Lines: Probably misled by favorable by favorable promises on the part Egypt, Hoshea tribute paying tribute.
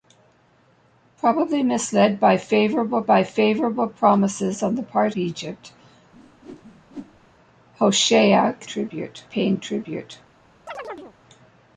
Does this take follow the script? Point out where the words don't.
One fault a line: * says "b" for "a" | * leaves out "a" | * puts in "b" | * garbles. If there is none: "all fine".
all fine